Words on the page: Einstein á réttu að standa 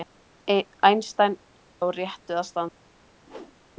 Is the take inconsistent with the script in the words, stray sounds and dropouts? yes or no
yes